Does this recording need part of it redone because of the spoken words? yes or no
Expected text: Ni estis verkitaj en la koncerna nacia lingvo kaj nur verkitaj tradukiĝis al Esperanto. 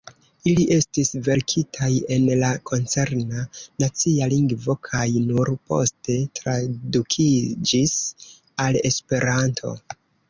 yes